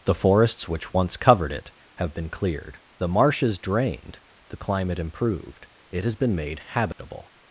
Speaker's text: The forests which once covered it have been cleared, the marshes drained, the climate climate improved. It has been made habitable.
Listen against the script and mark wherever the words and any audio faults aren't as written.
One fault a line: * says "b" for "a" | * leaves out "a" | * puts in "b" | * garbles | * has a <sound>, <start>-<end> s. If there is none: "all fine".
* leaves out "climate"
* has a dropout, 6.9-7.0 s